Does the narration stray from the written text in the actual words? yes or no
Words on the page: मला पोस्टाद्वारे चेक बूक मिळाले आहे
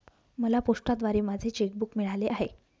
yes